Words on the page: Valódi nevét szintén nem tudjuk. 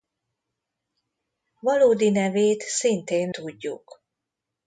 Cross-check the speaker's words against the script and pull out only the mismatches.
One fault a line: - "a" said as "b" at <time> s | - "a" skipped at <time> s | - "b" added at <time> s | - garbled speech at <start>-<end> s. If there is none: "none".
- "nem" skipped at 3.3 s